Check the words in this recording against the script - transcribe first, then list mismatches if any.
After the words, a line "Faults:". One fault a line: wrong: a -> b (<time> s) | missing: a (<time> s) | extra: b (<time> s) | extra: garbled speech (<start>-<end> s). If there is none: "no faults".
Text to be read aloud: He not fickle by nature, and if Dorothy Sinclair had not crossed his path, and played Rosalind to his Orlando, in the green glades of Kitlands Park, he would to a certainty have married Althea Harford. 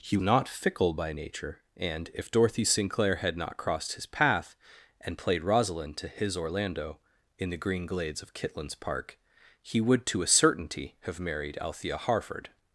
He not fickle by nature, and if Dorothy Sinclair had not crossed his path, and played Rosalind to his Orlando, in the green glades of Kitlands Park, he would to a certainty have married Althea Harford.
Faults:
no faults